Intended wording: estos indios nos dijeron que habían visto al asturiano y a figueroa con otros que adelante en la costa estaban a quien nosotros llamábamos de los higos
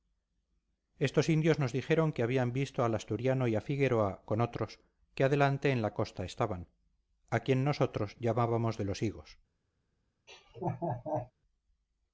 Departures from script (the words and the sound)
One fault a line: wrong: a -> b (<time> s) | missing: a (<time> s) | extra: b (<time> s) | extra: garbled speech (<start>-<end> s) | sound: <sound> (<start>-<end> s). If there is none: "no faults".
sound: laugh (10.3-11.3 s)